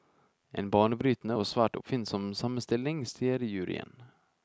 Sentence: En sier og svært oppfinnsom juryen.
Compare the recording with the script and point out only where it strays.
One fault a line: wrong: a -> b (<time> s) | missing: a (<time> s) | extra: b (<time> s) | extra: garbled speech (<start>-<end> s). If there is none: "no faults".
wrong: sier -> banebrytende (0.8 s)
extra: sammenstilling sier (2.4 s)